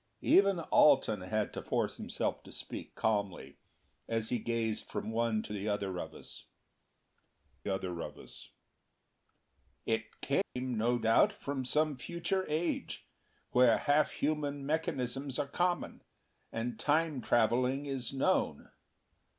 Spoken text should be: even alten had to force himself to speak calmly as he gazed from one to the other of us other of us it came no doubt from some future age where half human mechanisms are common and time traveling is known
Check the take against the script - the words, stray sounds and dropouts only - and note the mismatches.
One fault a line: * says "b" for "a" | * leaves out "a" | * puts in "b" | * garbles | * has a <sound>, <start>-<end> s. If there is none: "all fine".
* has a dropout, 10.4-10.6 s